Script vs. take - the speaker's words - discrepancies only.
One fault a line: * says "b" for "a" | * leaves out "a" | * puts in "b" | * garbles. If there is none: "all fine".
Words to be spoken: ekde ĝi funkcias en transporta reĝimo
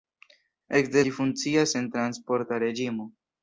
all fine